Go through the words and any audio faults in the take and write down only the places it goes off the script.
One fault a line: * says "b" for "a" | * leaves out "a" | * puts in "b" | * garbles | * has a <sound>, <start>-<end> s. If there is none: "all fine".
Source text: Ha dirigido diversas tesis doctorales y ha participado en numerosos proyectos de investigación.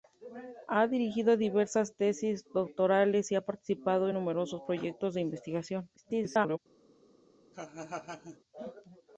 * garbles
* has a laugh, 7.5-8.4 s